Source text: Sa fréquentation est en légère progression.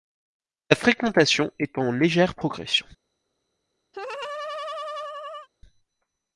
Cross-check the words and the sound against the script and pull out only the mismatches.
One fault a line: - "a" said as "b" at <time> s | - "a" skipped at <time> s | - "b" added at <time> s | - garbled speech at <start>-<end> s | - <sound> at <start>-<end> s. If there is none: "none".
- laugh at 3.9-5.5 s